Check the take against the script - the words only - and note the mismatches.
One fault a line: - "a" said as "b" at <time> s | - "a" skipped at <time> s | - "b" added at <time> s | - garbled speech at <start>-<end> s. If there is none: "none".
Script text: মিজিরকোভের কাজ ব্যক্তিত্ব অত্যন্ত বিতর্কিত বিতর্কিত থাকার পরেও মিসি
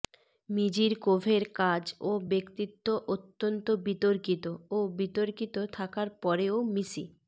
- "ও" added at 2.0 s
- "ও" added at 4.7 s